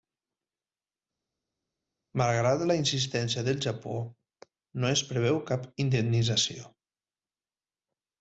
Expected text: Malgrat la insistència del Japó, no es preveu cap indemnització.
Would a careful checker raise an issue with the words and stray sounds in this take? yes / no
no